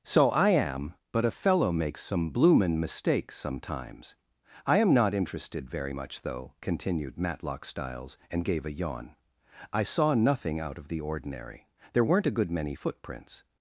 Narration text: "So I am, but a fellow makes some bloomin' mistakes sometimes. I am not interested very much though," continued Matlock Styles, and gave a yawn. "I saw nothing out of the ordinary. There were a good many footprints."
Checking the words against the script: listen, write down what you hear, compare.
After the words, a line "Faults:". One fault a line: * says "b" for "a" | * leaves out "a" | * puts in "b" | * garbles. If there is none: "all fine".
"So I am, but a fellow makes some bloomin' mistakes sometimes. I am not interested very much though," continued Matlock Styles, and gave a yawn. "I saw nothing out of the ordinary. There weren't a good many footprints."
Faults:
* says "weren't" for "were"